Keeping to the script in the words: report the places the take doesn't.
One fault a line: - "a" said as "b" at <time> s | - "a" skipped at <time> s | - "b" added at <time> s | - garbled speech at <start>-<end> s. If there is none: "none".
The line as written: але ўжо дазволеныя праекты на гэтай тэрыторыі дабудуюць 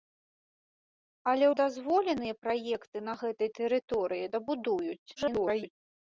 - "ўжо" skipped at 1.4 s
- garbled speech at 5.2-5.7 s